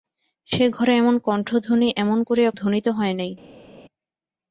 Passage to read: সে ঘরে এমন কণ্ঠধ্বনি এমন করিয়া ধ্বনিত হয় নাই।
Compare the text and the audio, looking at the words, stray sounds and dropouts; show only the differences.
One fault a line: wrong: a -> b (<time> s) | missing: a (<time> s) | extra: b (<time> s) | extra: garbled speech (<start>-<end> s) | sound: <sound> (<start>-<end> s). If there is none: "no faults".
no faults